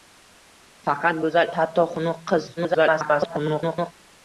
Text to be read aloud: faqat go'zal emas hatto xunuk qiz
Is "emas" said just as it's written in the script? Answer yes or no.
no